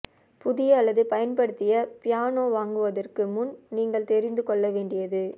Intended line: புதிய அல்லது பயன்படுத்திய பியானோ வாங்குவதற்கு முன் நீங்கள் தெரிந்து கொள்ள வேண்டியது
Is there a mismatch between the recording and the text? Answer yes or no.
no